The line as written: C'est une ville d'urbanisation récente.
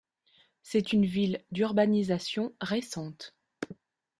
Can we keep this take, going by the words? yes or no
yes